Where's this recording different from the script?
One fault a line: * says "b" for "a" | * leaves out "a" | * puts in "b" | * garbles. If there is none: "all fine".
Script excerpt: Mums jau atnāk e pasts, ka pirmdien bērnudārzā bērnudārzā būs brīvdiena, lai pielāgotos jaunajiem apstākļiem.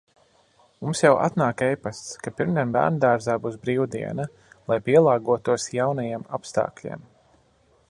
* leaves out "bērnudārzā"